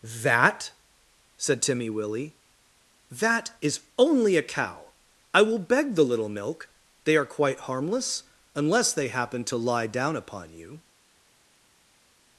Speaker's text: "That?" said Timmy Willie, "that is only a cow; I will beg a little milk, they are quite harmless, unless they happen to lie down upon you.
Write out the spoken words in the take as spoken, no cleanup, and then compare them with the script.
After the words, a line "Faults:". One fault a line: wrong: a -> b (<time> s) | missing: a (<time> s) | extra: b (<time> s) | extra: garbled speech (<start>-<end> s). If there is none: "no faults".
"That?" said Timmy Willie, "that is only a cow; I will beg the little milk, they are quite harmless, unless they happen to lie down upon you.
Faults:
wrong: a -> the (6.0 s)